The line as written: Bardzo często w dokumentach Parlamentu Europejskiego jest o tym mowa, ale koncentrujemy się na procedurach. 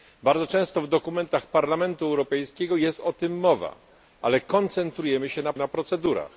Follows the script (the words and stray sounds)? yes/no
no